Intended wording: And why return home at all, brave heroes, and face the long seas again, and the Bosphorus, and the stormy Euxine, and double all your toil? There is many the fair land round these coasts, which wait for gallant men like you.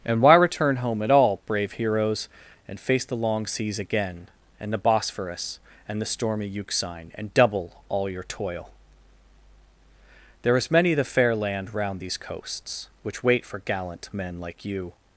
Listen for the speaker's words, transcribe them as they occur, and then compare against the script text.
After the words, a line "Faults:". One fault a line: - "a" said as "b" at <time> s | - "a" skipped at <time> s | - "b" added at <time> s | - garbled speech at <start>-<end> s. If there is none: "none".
And why return home at all, brave heroes, and face the long seas again, and the Bosphorus, and the stormy Euxine, and double all your toil? There is many the fair land round these coasts, which wait for gallant men like you.
Faults:
none